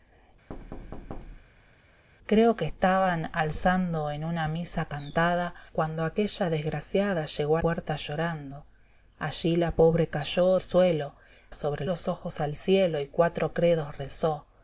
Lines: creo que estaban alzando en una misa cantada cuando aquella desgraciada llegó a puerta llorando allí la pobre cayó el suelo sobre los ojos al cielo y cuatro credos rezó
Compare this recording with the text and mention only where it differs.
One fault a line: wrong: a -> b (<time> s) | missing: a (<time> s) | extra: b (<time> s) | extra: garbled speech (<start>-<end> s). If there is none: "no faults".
no faults